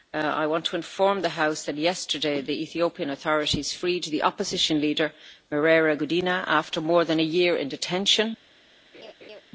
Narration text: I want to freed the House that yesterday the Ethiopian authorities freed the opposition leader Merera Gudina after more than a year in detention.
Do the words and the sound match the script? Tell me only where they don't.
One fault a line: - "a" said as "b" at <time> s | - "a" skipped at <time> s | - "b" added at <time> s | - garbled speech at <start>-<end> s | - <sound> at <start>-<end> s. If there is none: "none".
- "freed" said as "inform" at 0.8 s
- laugh at 8.9-9.4 s